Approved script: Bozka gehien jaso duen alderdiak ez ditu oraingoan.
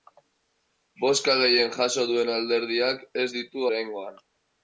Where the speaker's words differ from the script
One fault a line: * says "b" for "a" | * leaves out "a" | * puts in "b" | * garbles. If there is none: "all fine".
all fine